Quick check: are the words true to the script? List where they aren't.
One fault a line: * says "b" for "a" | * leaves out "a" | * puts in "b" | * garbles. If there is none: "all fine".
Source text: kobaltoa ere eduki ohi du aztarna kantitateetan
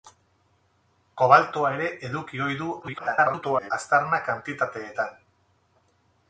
* garbles